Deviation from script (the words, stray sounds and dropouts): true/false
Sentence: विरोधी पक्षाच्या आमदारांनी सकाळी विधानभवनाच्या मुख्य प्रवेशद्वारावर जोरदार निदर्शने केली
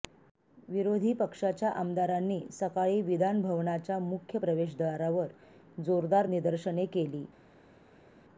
false